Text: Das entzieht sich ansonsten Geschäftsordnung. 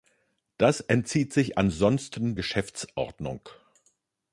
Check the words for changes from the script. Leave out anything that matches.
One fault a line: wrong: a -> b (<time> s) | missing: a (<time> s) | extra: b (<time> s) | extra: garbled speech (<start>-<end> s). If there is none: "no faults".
no faults